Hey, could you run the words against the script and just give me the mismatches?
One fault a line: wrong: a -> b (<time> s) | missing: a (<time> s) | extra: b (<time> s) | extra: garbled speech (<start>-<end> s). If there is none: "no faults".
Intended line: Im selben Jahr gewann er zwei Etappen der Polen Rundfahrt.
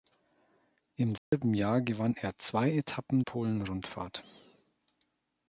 missing: der (3.2 s)